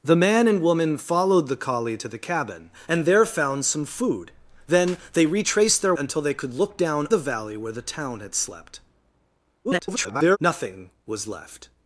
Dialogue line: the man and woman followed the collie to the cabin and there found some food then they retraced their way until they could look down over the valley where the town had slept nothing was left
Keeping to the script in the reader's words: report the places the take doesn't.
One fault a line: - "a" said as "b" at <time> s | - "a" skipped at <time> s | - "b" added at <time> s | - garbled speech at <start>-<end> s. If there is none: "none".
- "way" skipped at 5.9 s
- "over" skipped at 7.1 s
- garbled speech at 9.6-10.4 s